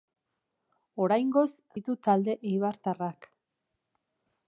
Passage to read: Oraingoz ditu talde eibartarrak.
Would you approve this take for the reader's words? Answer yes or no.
yes